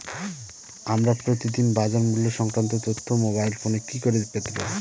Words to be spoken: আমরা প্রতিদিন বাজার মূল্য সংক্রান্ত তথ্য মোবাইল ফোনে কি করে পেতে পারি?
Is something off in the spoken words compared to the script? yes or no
no